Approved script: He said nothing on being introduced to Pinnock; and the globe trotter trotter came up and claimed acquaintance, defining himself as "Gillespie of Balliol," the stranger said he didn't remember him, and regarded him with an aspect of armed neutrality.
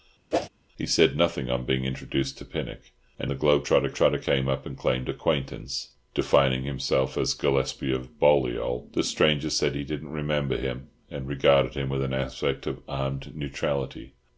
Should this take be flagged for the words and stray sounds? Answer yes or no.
yes